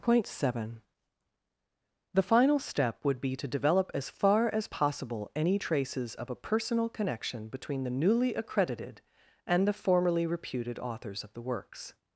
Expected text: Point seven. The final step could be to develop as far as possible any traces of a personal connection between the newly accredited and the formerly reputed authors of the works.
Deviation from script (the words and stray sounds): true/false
true